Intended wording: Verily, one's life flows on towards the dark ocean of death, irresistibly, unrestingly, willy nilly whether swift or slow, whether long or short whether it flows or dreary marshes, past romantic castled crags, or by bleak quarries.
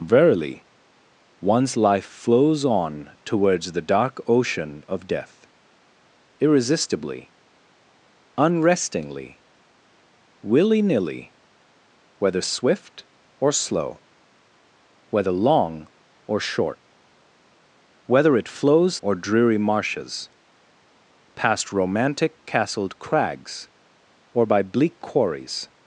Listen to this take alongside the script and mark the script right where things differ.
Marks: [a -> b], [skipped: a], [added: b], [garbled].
Verily, one's life flows on towards the dark ocean of death, irresistibly, unrestingly, willy nilly whether swift or slow, whether long or short whether it flows or dreary marshes, past romantic castled crags, or by bleak quarries.